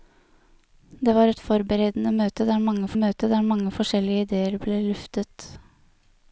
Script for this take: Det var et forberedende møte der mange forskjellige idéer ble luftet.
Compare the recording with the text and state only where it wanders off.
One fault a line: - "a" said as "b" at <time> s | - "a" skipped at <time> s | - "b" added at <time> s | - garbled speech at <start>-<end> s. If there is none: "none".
- "møte der mange" added at 3.0 s